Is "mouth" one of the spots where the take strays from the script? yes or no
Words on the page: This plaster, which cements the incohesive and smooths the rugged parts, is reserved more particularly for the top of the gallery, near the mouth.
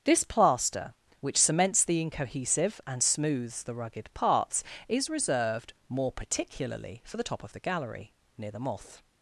yes